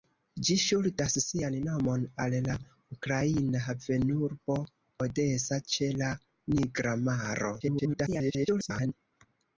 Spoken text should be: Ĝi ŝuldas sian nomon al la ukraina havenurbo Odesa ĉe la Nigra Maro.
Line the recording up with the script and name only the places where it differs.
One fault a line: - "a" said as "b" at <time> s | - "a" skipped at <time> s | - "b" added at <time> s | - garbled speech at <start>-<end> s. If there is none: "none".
- garbled speech at 7.6-8.9 s